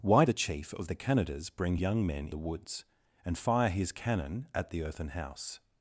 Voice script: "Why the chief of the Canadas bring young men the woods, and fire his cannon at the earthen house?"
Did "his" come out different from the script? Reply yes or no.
no